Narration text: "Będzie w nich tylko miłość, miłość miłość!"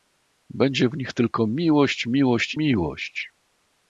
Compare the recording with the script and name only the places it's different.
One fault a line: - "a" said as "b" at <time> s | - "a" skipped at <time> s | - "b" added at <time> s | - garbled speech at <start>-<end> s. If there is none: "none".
none